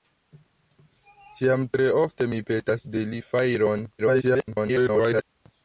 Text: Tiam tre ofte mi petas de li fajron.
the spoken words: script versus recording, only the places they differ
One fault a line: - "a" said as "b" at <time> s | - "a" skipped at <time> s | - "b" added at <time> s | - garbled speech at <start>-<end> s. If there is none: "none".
- garbled speech at 4.0-5.2 s